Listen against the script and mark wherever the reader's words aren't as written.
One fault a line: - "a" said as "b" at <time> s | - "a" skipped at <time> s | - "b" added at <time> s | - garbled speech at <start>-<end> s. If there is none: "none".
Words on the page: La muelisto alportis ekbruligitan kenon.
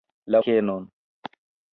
- "muelisto alportis ekbruligitan" skipped at 0.4 s